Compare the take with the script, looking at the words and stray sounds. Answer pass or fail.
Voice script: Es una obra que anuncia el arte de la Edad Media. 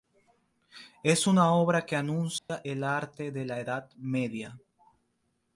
fail